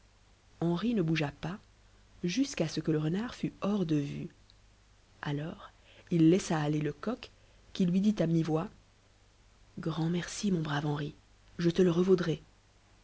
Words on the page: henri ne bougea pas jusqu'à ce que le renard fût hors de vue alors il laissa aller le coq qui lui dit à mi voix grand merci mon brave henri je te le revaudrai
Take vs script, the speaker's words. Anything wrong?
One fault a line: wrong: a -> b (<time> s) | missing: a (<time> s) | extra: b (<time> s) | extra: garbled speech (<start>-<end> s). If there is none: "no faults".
no faults